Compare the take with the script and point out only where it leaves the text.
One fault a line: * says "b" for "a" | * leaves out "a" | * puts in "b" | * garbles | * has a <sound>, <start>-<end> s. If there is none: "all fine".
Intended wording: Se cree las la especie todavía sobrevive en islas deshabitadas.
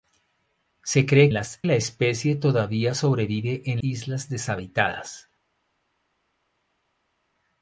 all fine